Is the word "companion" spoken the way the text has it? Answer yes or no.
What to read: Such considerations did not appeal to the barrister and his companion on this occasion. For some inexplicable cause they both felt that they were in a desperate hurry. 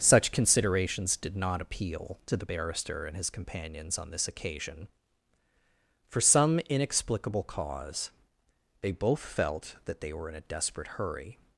no